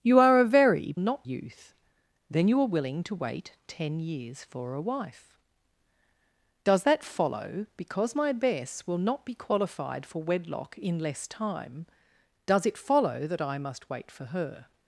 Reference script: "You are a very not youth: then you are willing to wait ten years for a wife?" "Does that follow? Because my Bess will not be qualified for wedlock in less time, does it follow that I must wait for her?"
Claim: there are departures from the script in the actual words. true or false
false